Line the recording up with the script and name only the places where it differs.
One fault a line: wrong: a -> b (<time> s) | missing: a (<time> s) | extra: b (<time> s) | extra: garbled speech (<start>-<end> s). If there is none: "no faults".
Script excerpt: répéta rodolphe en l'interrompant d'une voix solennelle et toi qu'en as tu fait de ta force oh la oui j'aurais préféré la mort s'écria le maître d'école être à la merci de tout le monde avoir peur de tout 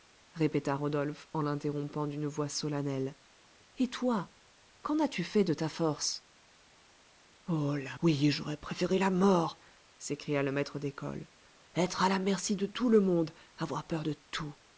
no faults